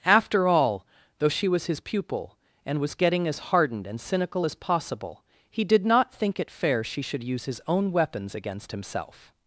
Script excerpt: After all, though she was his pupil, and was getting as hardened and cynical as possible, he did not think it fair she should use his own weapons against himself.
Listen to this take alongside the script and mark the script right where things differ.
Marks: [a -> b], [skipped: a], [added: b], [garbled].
After all, though she was his pupil, and was getting as hardened and cynical as possible, he did not think it fair she should use his own weapons against himself.